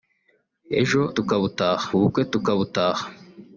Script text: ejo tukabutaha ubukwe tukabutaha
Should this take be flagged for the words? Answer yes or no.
no